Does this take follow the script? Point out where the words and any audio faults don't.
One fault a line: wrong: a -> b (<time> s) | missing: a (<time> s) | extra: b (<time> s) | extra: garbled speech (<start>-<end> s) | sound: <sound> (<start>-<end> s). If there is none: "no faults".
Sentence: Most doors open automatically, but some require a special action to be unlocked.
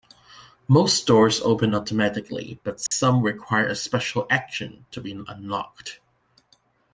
sound: dropout (2.9-2.9 s)